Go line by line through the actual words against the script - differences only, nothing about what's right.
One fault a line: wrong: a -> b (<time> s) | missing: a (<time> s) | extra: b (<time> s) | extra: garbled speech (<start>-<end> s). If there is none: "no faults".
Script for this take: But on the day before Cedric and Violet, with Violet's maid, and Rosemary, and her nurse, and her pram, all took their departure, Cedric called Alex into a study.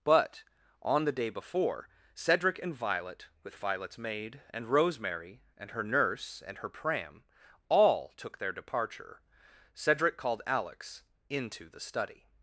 wrong: a -> the (11.7 s)